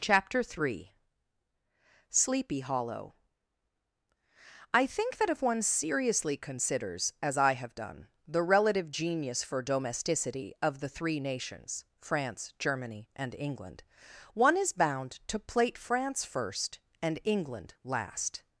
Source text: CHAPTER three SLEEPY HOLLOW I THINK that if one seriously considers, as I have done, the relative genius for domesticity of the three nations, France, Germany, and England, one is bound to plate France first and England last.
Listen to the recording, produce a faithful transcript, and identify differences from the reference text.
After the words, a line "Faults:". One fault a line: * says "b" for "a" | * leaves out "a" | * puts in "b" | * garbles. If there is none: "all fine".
CHAPTER three SLEEPY HOLLOW I THINK that if one seriously considers, as I have done, the relative genius for domesticity of the three nations, France, Germany, and England, one is bound to plate France first and England last.
Faults:
all fine